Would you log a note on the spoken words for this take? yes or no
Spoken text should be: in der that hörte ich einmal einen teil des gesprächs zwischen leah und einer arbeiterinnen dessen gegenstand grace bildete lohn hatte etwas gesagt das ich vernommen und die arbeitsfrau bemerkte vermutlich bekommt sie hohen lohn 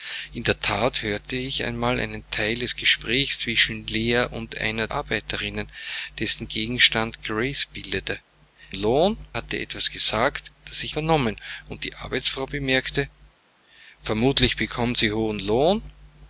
no